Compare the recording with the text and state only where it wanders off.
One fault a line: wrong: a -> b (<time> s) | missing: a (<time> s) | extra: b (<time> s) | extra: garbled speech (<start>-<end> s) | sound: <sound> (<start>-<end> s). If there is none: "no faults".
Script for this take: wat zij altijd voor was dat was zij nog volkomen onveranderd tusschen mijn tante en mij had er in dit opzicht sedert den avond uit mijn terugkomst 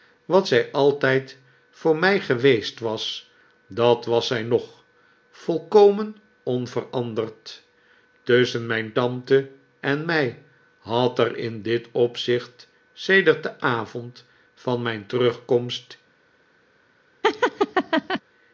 extra: mij geweest (2.0 s)
wrong: uit -> van (14.5 s)
sound: laugh (17.2-18.2 s)